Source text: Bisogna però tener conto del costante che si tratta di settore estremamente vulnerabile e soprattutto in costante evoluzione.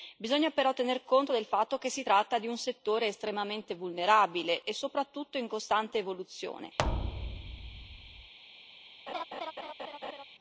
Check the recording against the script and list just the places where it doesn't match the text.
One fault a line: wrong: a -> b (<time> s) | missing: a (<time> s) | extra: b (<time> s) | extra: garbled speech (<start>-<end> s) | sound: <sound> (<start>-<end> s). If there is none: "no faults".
wrong: costante -> fatto (1.5 s)
extra: un (2.5 s)
sound: thud (6.8-8.3 s)
sound: laugh (9.1-10.2 s)